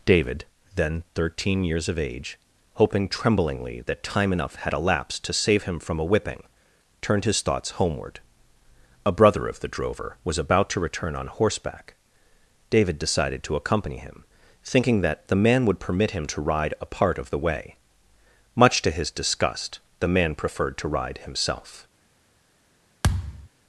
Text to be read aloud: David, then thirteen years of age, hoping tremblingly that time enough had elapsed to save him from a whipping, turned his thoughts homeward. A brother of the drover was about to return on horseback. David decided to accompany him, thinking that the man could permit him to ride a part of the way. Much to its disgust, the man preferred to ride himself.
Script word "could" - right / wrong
wrong